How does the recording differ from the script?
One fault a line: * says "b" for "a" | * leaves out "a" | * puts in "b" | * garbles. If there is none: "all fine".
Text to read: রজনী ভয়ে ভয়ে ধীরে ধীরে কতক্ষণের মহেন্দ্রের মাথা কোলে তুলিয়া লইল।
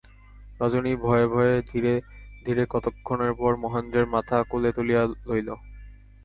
* puts in "পর"